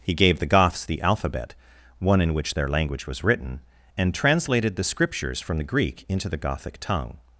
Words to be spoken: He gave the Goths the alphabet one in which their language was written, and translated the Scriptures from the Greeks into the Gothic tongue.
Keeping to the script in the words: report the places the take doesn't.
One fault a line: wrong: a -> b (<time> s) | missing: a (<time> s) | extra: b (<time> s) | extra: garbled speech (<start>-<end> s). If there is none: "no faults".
wrong: Greeks -> Greek (5.6 s)